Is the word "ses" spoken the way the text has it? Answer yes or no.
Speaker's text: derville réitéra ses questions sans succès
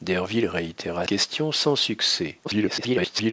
no